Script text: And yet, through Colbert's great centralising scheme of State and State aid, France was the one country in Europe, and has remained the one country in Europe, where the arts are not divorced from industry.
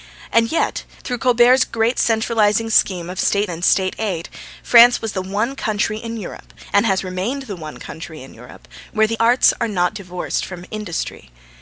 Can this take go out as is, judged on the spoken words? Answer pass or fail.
pass